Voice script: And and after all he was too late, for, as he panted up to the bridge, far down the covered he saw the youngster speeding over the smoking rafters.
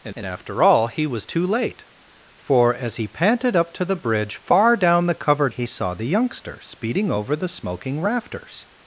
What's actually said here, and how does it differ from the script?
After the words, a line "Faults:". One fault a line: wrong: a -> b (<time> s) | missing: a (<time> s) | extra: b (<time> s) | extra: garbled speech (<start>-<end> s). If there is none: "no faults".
And and after all he was too late, for, as he panted up to the bridge, far down the covered he saw the youngster speeding over the smoking rafters.
Faults:
no faults